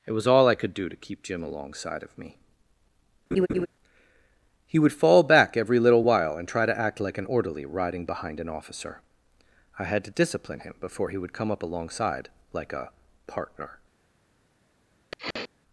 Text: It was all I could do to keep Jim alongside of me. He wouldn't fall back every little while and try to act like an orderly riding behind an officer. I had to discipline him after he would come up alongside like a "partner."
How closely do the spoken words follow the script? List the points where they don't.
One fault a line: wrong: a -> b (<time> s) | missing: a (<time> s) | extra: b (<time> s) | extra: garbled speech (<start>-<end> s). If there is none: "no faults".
wrong: wouldn't -> would (4.8 s)
wrong: after -> before (10.8 s)